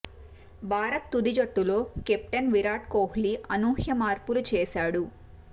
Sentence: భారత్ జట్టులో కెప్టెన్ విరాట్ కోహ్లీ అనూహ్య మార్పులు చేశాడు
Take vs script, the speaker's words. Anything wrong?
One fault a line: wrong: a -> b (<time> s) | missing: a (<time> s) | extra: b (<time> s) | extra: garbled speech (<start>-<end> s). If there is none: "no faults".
extra: తుది (1.1 s)